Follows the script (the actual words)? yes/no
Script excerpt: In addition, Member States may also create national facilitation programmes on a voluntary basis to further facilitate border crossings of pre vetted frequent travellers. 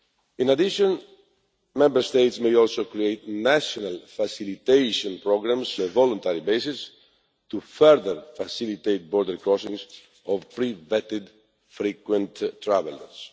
no